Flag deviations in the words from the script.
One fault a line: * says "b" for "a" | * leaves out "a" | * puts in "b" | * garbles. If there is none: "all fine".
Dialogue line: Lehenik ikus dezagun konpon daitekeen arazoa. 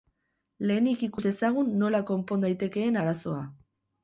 * puts in "nola"